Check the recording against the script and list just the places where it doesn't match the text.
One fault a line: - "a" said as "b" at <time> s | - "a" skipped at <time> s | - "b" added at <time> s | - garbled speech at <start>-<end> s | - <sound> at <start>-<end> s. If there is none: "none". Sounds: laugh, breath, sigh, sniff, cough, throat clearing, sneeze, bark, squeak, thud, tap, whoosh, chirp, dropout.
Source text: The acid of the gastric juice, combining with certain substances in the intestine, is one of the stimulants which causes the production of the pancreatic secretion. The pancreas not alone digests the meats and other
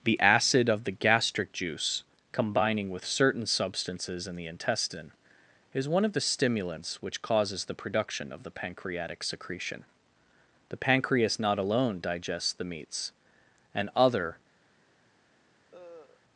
- cough at 15.7-16.2 s